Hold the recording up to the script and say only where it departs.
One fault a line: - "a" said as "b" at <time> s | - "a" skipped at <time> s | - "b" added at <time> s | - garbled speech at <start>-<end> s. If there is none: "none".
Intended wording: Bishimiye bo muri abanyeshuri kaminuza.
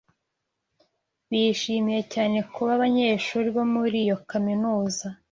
- "cyane kuba abanyeshuri" added at 2.1 s
- "abanyeshuri" said as "iyo" at 4.0 s